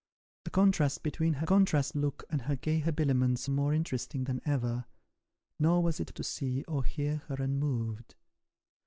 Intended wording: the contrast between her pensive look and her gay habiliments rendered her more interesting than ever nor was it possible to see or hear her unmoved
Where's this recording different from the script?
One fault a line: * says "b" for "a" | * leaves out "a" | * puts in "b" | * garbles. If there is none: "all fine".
* says "contrast" for "pensive"
* leaves out "rendered her"
* leaves out "possible"